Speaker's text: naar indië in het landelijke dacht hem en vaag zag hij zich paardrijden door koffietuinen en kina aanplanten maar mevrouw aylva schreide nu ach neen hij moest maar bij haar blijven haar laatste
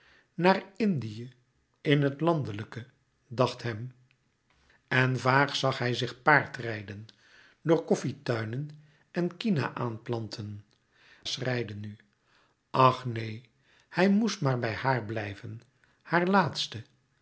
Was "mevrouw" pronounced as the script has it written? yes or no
no